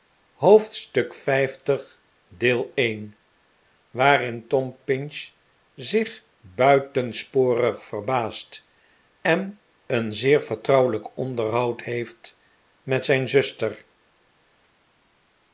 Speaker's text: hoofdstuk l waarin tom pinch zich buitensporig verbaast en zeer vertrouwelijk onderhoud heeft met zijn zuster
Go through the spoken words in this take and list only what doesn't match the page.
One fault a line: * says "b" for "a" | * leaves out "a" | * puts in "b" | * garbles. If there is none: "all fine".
* puts in "een"